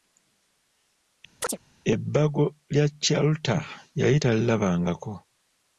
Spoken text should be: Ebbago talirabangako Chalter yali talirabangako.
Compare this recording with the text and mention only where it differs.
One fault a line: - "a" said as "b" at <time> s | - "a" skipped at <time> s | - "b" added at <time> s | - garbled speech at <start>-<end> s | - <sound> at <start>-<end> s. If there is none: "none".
- chirp at 1.4-1.6 s
- "talirabangako" said as "lya" at 2.7 s